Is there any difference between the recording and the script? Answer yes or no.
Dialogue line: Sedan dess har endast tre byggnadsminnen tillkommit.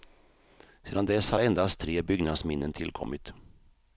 no